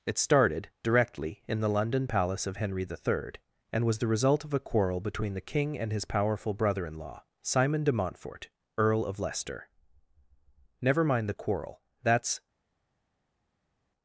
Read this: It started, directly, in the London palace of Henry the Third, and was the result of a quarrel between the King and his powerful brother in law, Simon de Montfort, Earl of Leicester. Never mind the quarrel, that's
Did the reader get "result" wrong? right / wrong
right